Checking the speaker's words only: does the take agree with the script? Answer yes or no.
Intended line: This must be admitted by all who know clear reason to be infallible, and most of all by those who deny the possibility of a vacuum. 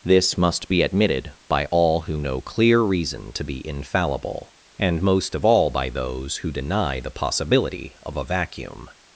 yes